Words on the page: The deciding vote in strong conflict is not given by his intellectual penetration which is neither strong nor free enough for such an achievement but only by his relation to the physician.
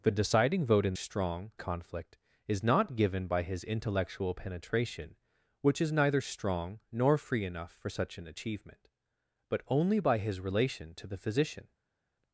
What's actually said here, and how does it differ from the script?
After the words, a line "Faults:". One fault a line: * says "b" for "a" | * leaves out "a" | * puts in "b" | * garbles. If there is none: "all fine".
The deciding vote in strong conflict is not given by his intellectual penetration which is neither strong nor free enough for such an achievement but only by his relation to the physician.
Faults:
all fine